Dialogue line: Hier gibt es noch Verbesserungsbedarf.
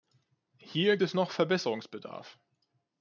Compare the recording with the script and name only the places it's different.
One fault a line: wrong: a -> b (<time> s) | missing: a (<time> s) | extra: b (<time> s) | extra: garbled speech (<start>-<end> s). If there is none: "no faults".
missing: gibt (1.0 s)